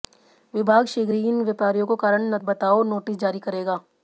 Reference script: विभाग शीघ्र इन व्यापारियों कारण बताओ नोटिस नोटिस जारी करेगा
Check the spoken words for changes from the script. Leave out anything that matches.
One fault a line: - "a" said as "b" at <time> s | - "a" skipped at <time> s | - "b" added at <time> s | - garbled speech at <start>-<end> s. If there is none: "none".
- "ही" added at 1.1 s
- "को" added at 1.9 s
- "नोटिस" skipped at 3.2 s